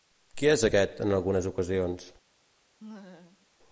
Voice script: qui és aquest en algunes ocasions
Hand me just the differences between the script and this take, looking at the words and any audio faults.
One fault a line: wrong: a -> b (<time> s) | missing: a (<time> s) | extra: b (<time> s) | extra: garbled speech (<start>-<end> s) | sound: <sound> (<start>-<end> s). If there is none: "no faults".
sound: laugh (2.8-3.5 s)